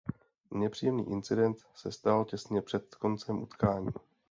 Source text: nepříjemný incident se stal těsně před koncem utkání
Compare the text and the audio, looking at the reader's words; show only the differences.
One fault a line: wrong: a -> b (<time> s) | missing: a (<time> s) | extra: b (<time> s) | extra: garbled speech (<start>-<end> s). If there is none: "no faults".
no faults